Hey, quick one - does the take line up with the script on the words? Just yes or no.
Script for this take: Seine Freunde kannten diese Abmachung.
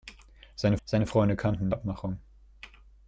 no